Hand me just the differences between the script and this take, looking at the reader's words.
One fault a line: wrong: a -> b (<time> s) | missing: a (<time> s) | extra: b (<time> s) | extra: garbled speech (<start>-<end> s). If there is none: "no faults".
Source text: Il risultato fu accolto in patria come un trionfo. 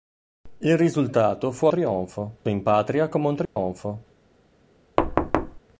wrong: accolto -> trionfo (1.7 s)